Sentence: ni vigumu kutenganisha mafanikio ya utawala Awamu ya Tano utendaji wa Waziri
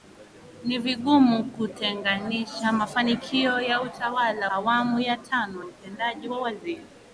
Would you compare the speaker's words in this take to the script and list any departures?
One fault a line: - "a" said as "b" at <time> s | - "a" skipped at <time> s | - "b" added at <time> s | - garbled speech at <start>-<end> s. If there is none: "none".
none